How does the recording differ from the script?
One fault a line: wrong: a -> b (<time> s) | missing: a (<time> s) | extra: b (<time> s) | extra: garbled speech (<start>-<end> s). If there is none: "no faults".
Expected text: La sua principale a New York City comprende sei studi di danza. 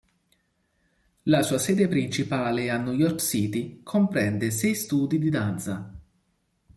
extra: sede (1.6 s)